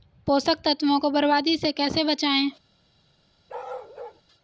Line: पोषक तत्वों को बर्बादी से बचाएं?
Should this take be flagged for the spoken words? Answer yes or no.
yes